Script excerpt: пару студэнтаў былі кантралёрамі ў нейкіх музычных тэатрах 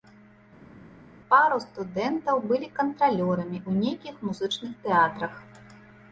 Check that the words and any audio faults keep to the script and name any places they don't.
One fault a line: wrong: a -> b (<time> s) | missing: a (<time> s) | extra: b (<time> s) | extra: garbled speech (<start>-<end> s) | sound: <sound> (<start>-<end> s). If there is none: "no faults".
no faults